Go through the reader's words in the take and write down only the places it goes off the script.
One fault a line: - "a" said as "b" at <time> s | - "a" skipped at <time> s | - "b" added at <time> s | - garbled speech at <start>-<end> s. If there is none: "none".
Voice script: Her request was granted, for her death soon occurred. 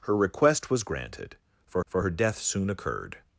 - "for" added at 1.9 s